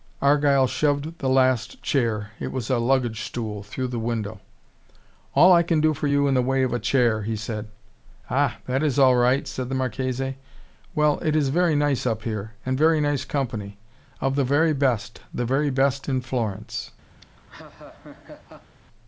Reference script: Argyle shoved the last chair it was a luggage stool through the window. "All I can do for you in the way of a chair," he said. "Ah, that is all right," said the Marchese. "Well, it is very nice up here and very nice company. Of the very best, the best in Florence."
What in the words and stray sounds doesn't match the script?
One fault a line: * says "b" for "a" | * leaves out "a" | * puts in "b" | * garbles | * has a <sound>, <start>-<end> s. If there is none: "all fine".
* puts in "very"
* has a laugh, 17.2-18.8 s